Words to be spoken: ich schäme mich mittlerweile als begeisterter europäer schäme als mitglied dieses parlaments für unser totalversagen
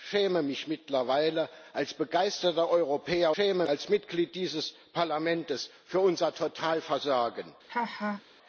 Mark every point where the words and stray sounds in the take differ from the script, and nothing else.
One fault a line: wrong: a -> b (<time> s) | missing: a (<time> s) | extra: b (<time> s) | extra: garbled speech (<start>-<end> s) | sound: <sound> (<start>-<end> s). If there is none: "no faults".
sound: laugh (7.7-8.2 s)